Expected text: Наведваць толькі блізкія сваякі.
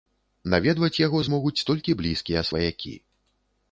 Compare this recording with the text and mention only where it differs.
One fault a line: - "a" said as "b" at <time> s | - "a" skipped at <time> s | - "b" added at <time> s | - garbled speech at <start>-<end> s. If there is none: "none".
- "яго змогуць" added at 1.0 s